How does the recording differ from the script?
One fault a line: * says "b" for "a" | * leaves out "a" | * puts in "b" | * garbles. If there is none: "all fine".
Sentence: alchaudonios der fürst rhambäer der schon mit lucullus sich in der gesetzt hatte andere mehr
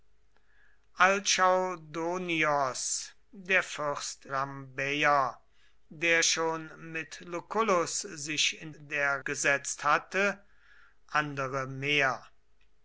all fine